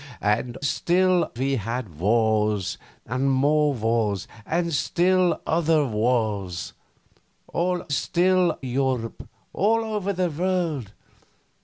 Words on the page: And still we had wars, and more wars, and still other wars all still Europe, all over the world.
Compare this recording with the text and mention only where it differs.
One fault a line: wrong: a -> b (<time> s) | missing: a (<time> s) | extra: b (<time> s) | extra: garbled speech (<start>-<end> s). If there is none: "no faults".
no faults